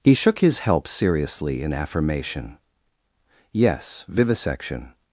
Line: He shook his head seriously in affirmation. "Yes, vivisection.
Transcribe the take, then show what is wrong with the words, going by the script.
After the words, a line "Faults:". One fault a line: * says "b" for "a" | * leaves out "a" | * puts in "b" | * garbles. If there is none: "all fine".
He shook his help seriously in affirmation. "Yes, vivisection.
Faults:
* says "help" for "head"